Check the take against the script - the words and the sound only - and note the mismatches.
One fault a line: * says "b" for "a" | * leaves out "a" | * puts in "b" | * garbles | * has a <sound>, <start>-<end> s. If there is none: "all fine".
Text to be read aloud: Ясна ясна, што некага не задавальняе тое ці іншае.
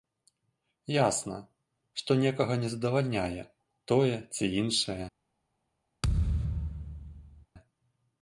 * leaves out "ясна"
* has a thud, 6.0-7.5 s